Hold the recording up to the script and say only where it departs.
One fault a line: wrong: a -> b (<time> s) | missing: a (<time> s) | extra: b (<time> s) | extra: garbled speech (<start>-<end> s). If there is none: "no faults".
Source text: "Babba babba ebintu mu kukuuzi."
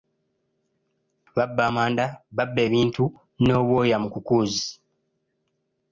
extra: amanda (1.7 s)
extra: n'obwoya (3.4 s)